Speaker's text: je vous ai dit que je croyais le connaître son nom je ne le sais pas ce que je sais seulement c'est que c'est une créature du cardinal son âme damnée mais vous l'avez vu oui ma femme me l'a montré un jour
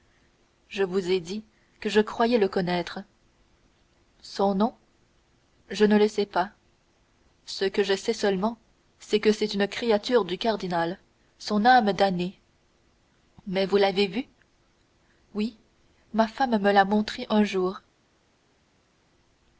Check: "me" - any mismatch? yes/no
no